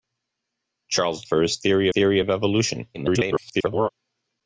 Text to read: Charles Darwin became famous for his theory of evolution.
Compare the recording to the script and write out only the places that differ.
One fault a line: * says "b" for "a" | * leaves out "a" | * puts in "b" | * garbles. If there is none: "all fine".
* leaves out "Darwin became famous"
* puts in "theory"
* garbles